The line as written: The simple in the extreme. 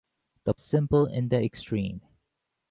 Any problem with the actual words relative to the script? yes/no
no